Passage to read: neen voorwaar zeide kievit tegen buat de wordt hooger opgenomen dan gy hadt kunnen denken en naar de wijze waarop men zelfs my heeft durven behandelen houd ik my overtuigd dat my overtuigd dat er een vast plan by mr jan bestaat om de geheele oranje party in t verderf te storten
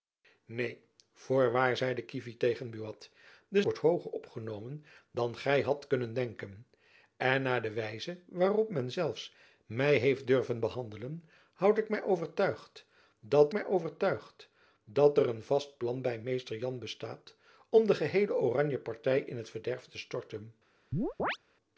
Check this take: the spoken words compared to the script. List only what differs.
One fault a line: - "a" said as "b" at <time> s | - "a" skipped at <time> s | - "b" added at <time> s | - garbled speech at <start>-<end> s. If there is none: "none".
none